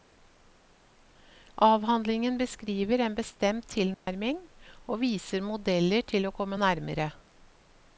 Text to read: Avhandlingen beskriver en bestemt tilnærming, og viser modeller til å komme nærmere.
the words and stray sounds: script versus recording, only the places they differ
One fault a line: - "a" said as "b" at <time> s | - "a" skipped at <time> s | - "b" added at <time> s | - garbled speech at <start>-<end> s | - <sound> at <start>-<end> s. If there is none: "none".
- dropout at 3.9-4.1 s